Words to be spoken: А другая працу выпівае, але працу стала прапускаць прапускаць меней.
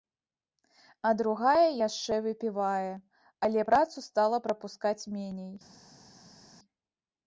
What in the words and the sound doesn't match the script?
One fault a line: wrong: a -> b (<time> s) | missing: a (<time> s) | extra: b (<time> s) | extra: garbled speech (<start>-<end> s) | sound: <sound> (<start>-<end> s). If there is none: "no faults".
wrong: працу -> яшчэ (1.9 s)
missing: прапускаць (5.0 s)